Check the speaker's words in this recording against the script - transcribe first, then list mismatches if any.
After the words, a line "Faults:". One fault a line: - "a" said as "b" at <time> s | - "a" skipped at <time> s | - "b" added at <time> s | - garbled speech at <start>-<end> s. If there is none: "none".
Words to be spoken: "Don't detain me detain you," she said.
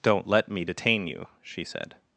"Don't let me detain you," she said.
Faults:
- "detain" said as "let" at 0.3 s